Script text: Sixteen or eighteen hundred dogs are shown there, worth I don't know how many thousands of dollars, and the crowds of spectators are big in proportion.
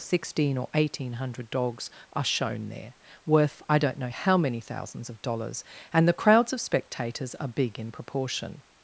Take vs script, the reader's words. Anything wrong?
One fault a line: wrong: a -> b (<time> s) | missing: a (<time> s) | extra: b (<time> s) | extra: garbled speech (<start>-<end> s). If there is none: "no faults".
no faults